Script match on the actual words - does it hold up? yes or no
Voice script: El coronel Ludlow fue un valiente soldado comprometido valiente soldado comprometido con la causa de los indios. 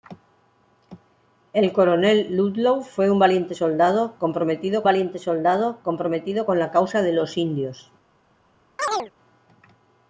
yes